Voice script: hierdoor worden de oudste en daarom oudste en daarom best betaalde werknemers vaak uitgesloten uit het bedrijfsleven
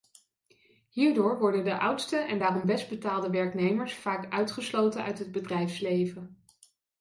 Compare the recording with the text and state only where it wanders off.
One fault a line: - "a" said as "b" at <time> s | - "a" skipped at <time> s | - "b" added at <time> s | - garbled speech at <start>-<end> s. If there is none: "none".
- "oudste en daarom" skipped at 2.7 s